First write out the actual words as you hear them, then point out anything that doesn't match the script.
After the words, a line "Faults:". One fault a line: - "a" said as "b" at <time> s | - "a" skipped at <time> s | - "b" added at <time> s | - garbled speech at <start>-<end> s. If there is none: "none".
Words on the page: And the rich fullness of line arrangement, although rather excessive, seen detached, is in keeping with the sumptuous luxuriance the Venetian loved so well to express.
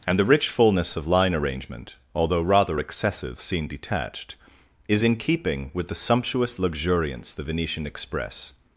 And the rich fullness of line arrangement, although rather excessive, seen detached, is in keeping with the sumptuous luxuriance the Venetian express.
Faults:
- "loved so well to" skipped at 7.9 s